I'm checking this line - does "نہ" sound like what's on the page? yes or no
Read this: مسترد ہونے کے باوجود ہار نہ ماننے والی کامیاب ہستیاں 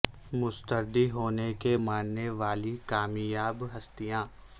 no